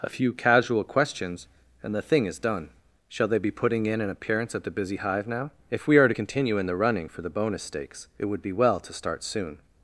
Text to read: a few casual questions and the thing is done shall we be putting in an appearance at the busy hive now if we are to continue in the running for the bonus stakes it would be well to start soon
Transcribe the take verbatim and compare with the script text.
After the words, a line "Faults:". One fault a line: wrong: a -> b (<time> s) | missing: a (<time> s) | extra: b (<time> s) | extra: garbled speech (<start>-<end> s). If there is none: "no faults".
a few casual questions and the thing is done shall they be putting in an appearance at the busy hive now if we are to continue in the running for the bonus stakes it would be well to start soon
Faults:
wrong: we -> they (3.3 s)